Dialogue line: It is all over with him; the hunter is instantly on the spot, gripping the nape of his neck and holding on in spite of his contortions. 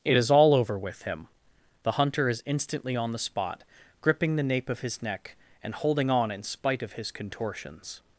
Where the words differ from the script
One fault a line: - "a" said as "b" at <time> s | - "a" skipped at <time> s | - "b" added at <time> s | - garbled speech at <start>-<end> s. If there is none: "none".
none